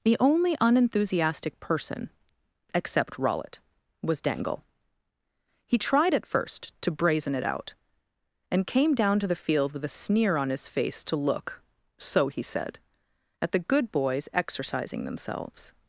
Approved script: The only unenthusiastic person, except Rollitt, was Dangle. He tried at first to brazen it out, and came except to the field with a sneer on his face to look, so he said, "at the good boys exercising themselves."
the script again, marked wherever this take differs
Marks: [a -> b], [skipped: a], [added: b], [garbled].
The only unenthusiastic person, except Rollitt, was Dangle. He tried at first to brazen it out, and came [except -> down] to the field with a sneer on his face to look, so he said, "at the good boys exercising themselves."